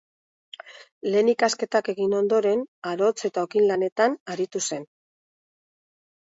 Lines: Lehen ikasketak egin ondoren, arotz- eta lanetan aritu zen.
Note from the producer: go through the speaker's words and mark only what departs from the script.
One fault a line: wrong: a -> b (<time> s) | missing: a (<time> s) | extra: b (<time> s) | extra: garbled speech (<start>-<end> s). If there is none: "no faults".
extra: okin (3.5 s)